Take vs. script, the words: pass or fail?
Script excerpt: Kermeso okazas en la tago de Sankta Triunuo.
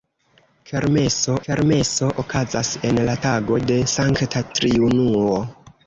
fail